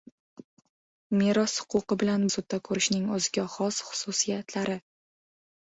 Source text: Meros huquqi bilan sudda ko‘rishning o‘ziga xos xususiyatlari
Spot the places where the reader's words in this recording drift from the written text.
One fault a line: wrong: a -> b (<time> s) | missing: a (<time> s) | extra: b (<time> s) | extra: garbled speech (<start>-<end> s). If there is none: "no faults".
no faults